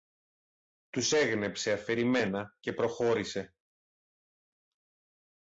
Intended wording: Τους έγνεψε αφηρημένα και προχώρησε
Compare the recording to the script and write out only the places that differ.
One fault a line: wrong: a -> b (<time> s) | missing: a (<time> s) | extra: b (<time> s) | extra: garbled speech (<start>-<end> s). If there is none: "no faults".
no faults